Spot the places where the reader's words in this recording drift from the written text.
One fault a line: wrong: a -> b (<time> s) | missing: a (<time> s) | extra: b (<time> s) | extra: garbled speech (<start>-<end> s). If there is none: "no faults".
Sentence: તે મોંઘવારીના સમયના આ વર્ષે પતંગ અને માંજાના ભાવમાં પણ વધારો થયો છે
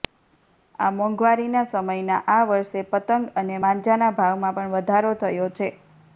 wrong: તે -> આ (0.8 s)